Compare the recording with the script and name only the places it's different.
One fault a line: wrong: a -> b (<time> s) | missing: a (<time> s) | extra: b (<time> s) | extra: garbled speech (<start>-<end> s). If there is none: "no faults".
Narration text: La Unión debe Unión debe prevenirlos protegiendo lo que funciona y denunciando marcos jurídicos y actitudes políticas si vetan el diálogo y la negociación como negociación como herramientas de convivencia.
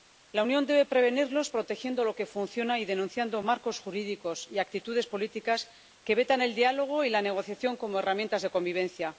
missing: Unión debe (0.8 s)
wrong: si -> que (6.0 s)
missing: negociación como (8.0 s)